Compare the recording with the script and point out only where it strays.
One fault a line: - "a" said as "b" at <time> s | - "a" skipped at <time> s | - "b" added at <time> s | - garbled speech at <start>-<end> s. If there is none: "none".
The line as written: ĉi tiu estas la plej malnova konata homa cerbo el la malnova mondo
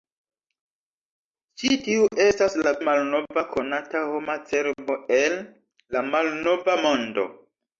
- "plej" skipped at 2.7 s